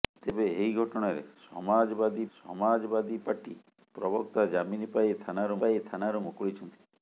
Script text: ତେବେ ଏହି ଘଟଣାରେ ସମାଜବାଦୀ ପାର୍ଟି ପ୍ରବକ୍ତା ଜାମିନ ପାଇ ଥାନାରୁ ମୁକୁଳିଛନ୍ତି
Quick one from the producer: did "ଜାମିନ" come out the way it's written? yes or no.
yes